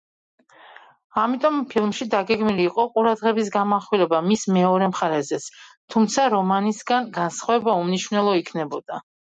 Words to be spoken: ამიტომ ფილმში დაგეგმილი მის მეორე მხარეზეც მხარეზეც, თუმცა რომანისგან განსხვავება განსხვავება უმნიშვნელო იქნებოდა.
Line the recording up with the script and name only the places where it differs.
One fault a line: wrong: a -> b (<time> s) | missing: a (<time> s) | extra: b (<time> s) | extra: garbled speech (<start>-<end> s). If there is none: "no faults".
extra: იყო ყურადღების გამახვილება (2.7 s)
missing: მხარეზეც (5.5 s)
missing: განსხვავება (7.8 s)